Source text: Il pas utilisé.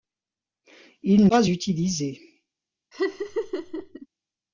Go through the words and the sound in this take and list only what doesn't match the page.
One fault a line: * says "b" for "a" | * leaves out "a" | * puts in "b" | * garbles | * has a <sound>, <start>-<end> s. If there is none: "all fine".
* has a laugh, 2.9-4.1 s